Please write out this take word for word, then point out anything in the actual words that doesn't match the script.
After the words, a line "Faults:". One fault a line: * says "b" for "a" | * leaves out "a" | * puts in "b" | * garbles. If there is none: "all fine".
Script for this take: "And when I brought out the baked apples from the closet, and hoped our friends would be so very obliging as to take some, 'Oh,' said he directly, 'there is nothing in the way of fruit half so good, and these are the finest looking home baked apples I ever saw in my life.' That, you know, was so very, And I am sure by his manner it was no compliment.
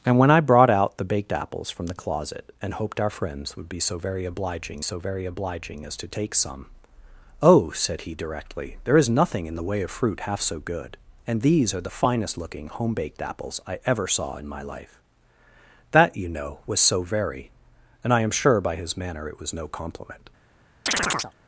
"And when I brought out the baked apples from the closet, and hoped our friends would be so very obliging so very obliging as to take some, 'Oh,' said he directly, 'there is nothing in the way of fruit half so good, and these are the finest looking home baked apples I ever saw in my life.' That, you know, was so very, And I am sure by his manner it was no compliment.
Faults:
* puts in "so very obliging"